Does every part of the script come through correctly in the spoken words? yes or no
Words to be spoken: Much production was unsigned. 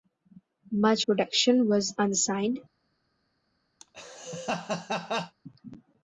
yes